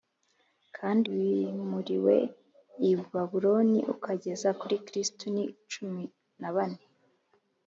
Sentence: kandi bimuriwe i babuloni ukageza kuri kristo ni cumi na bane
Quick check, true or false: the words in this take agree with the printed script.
true